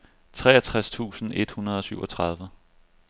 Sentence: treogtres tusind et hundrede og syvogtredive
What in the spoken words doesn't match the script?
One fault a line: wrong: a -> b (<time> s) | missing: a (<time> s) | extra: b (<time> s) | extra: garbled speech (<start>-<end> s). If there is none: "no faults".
no faults